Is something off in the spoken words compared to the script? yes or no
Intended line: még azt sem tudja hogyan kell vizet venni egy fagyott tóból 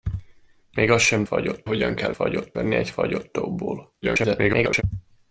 yes